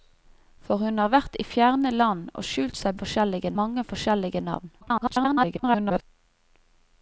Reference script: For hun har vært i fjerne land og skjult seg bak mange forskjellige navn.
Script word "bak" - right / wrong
wrong